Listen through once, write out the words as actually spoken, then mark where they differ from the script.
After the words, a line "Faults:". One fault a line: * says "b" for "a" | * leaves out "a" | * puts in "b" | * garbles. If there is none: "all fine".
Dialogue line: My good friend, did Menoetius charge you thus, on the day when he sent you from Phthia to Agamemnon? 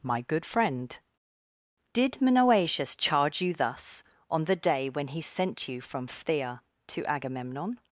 My good friend, did Menoetius charge you thus, on the day when he sent you from Phthia to Agamemnon?
Faults:
all fine